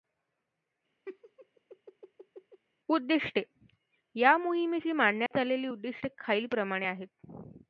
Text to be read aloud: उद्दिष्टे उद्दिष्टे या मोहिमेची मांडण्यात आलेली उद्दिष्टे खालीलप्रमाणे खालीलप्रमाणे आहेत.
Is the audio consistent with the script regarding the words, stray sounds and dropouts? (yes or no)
no